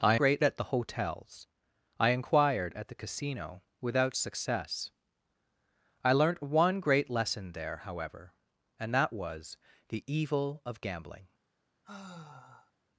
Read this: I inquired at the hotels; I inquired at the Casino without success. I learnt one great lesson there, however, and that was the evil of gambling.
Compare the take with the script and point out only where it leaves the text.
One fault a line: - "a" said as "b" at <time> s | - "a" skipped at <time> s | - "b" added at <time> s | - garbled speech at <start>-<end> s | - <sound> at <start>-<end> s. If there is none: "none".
- "inquired" said as "great" at 0.1 s
- sigh at 11.8-12.7 s